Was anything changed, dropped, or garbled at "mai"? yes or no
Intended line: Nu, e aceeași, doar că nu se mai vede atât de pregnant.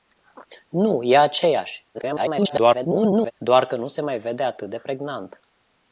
no